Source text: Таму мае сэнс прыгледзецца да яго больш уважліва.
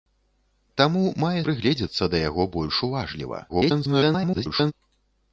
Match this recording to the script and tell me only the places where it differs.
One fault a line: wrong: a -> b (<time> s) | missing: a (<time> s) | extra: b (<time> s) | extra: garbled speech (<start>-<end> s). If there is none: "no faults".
missing: сэнс (1.4 s)
extra: garbled speech (3.5-4.7 s)